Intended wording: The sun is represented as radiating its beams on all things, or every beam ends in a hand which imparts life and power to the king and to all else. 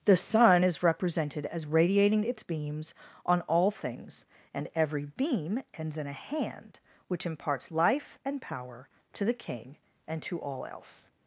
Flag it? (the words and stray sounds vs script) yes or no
yes